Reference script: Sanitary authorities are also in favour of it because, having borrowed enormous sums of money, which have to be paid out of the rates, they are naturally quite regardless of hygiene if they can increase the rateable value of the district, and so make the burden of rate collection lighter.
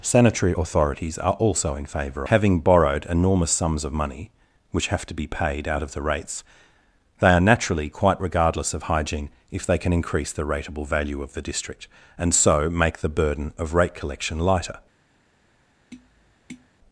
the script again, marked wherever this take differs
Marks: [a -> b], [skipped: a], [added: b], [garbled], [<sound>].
Sanitary authorities are also in favour [skipped: of it because,] having borrowed enormous sums of money, which have to be paid out of the rates, they are naturally quite regardless of hygiene if they can increase the rateable value of the district, and so make the burden of rate collection lighter. [tap]